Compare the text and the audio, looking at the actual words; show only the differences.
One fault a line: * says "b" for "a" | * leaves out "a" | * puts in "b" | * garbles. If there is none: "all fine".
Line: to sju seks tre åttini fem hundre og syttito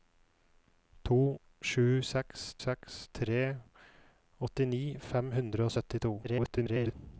* puts in "seks"
* garbles